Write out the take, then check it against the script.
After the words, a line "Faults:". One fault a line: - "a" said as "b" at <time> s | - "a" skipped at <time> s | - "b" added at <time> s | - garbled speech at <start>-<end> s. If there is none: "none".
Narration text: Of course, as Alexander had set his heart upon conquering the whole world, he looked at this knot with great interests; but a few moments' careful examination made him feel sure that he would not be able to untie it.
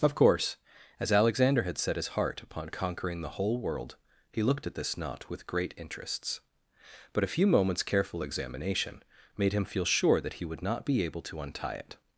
Of course, as Alexander had set his heart upon conquering the whole world, he looked at this knot with great interests; but a few moments' careful examination made him feel sure that he would not be able to untie it.
Faults:
none